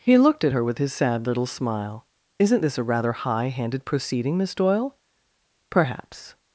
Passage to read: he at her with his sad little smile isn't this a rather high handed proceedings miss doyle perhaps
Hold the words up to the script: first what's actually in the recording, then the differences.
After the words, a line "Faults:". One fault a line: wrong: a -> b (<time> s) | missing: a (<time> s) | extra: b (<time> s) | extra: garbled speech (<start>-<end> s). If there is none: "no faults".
he looked at her with his sad little smile isn't this a rather high handed proceeding miss doyle perhaps
Faults:
extra: looked (0.2 s)
wrong: proceedings -> proceeding (3.9 s)